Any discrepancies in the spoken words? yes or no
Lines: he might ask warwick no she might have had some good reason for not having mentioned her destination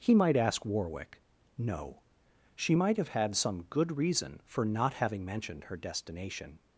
no